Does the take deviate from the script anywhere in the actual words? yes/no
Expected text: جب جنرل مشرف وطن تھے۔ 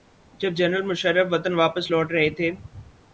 yes